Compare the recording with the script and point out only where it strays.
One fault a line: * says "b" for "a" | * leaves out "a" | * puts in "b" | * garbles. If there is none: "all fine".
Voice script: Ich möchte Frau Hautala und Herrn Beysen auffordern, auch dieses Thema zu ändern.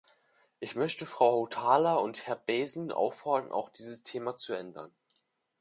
all fine